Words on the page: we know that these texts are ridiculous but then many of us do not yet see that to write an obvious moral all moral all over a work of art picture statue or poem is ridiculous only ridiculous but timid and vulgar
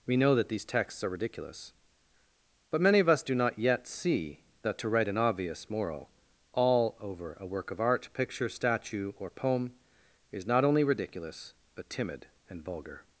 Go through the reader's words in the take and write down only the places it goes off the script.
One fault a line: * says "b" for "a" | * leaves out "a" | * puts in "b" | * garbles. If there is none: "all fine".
* leaves out "then"
* leaves out "moral all"
* says "not" for "ridiculous"